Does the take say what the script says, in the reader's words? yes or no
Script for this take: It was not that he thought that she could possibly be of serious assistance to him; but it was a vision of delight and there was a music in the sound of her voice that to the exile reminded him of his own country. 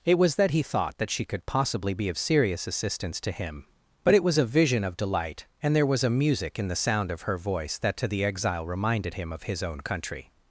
no